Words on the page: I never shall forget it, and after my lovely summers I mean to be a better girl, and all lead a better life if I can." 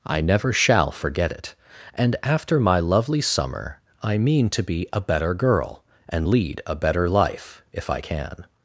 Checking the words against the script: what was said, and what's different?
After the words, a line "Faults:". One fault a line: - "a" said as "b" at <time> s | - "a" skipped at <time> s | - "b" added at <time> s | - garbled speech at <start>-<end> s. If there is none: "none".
I never shall forget it, and after my lovely summer I mean to be a better girl, and lead a better life if I can."
Faults:
- "summers" said as "summer" at 3.2 s
- "all" skipped at 6.3 s